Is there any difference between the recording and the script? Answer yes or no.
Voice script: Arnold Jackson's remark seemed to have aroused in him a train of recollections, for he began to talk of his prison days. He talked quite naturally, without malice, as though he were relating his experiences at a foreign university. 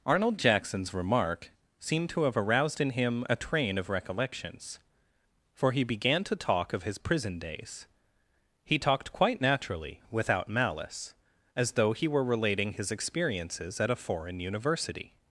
no